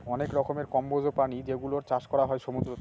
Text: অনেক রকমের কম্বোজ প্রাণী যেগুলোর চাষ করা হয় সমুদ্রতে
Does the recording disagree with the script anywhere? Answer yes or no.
no